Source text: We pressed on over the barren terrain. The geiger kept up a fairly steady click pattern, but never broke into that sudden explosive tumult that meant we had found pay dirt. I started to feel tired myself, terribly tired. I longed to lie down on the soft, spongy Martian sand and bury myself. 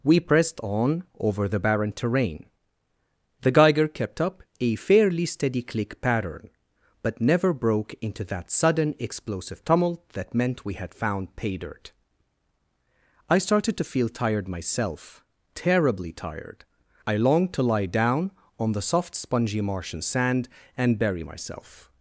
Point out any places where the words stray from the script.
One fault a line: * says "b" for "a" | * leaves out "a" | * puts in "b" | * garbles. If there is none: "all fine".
all fine